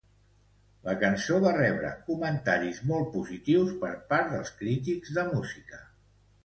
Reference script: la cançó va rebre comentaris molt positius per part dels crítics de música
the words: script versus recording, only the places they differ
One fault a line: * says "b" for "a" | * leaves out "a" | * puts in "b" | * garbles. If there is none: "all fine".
all fine